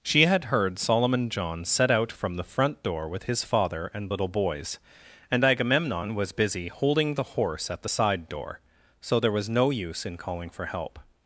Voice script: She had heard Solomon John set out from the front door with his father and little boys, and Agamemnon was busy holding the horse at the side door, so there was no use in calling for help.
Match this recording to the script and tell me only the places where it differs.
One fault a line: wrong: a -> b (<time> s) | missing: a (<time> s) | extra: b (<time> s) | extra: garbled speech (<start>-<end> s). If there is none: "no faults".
no faults